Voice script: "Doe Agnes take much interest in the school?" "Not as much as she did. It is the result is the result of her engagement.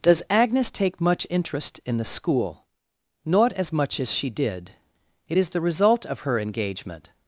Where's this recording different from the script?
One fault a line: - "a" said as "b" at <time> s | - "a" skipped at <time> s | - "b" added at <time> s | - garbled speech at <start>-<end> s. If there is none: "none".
- "Doe" said as "Does" at 0.0 s
- "is the result" skipped at 6.1 s